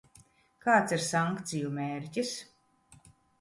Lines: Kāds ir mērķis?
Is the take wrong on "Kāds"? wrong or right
right